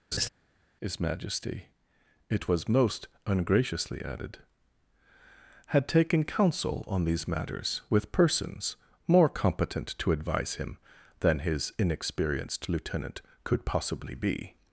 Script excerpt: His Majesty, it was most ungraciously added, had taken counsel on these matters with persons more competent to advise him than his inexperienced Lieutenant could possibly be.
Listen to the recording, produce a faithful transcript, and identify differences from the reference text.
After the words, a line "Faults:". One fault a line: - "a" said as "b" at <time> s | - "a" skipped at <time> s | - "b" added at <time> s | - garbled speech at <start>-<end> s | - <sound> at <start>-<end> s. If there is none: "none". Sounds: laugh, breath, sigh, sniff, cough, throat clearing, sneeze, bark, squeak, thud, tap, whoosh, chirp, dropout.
His Majesty, it was most ungraciously added, had taken counsel on these matters with persons more competent to advise him than his inexperienced Lieutenant could possibly be.
Faults:
- laugh at 0.1-0.3 s